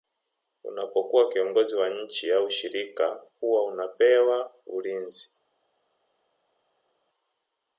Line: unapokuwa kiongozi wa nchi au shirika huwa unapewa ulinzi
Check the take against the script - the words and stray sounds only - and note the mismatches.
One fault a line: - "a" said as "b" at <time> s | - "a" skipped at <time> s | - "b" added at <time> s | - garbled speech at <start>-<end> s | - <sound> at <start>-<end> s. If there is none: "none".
none